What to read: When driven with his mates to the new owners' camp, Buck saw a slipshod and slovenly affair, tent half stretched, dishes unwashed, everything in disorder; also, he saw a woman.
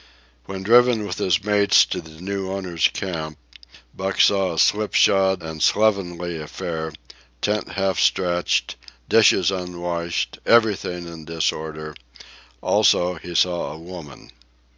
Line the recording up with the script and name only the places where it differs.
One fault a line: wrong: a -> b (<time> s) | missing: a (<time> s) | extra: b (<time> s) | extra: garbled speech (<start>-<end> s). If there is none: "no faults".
no faults